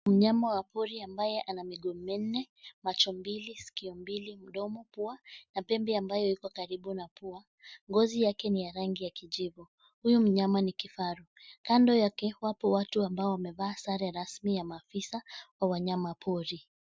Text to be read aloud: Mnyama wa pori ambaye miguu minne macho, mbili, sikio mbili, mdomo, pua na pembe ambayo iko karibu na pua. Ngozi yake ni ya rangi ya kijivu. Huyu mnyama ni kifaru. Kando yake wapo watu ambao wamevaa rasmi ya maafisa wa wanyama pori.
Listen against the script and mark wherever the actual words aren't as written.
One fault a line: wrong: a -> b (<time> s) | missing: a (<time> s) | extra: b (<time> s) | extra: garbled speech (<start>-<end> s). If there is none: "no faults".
extra: ana (1.4 s)
extra: sare (13.8 s)